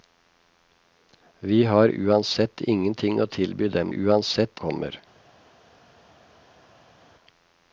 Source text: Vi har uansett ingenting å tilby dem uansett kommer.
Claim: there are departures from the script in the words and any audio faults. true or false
false